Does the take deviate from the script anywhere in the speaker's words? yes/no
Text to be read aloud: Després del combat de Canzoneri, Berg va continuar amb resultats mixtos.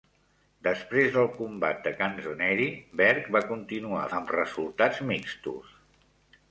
no